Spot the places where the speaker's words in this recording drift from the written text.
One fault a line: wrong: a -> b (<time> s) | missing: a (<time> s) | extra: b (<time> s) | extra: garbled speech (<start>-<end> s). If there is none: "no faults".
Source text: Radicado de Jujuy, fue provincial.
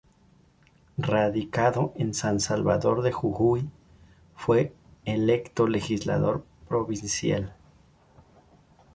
extra: en San Salvador (1.9 s)
extra: electo legislador (5.0 s)